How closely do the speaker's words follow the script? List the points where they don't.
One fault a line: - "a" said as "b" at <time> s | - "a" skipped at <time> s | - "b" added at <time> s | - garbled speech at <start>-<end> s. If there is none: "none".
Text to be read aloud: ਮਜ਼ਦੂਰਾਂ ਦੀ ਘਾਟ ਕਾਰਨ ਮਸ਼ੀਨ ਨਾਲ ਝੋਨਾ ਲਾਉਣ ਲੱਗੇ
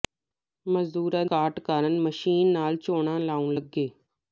- "ਦੀ" skipped at 1.2 s